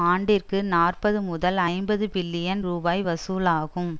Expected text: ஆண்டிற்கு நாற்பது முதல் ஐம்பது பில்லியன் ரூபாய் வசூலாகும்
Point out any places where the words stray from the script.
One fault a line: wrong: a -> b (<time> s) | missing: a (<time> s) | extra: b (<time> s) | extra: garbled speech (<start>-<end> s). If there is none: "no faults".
no faults